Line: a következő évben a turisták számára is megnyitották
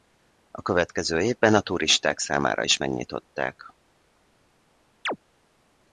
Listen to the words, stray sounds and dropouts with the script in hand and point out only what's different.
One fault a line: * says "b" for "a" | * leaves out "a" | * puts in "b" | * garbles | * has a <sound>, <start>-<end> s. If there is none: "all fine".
* has a chirp, 5.1-5.2 s